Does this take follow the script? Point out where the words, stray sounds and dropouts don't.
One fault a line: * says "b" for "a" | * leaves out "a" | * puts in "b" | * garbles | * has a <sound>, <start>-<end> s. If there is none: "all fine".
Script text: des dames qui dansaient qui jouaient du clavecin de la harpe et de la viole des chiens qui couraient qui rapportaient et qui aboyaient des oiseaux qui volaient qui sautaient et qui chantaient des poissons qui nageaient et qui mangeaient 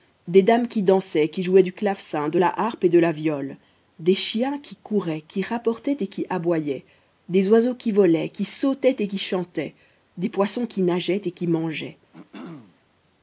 * has a throat clearing, 12.1-12.8 s